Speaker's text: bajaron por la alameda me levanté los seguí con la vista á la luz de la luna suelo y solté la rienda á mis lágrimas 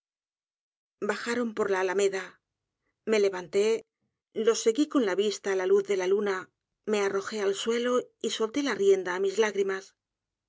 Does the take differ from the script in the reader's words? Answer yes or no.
yes